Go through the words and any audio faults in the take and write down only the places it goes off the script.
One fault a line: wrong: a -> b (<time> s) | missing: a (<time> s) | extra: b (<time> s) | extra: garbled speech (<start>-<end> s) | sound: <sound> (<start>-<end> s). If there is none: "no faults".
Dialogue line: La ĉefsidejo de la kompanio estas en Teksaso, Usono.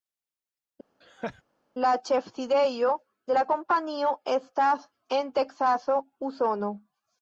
sound: laugh (1.0-1.4 s)